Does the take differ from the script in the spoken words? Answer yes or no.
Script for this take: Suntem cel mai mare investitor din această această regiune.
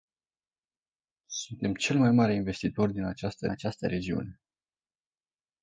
no